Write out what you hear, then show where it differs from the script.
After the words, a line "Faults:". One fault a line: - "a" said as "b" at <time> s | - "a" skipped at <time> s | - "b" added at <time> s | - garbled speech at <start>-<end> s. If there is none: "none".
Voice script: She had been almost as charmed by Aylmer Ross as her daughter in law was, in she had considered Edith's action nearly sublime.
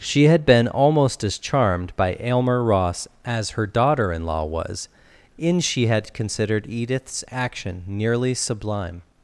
She had been almost as charmed by Aylmer Ross as her daughter in law was, in she had considered Edith's action nearly sublime.
Faults:
none